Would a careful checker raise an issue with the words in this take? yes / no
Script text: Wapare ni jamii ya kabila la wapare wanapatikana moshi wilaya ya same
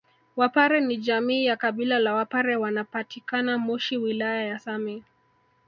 no